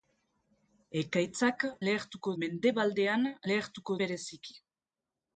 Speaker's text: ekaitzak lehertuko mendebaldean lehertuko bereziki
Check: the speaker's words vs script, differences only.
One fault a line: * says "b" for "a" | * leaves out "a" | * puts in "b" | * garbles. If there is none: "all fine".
all fine